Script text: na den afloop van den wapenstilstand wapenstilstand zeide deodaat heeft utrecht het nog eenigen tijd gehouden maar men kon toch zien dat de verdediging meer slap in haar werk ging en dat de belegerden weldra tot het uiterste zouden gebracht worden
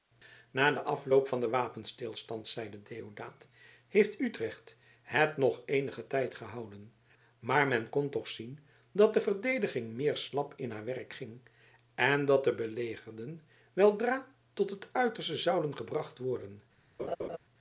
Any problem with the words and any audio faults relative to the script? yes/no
yes